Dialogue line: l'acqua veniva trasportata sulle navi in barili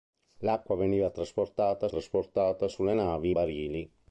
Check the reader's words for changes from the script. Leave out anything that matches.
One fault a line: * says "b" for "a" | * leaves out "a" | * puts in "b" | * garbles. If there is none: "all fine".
* puts in "trasportata"
* leaves out "in"